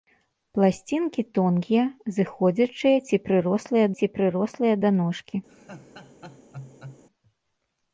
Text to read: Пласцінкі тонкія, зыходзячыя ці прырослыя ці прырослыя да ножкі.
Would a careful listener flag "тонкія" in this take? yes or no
no